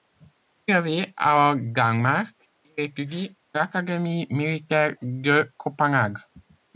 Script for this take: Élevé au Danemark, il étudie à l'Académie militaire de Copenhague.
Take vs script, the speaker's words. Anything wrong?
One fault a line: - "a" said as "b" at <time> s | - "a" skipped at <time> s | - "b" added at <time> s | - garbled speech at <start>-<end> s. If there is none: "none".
none